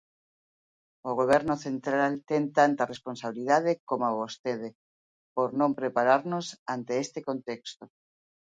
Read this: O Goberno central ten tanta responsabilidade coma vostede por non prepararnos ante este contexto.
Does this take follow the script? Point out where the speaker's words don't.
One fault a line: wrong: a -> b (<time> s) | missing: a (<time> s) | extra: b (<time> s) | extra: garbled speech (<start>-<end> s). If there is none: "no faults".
no faults